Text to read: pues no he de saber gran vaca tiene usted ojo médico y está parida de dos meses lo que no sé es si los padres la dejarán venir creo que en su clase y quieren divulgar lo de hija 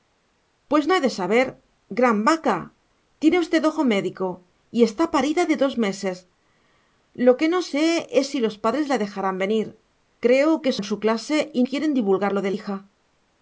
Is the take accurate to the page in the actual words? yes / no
yes